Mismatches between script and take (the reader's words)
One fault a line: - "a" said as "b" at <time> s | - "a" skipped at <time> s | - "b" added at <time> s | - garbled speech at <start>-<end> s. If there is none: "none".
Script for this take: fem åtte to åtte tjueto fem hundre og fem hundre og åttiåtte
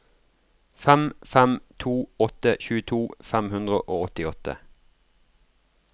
- "åtte" said as "fem" at 1.3 s
- "fem hundre og" skipped at 4.0 s